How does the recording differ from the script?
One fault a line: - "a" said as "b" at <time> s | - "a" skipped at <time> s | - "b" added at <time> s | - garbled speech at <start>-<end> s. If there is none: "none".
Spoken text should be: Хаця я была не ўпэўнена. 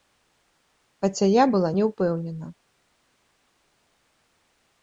none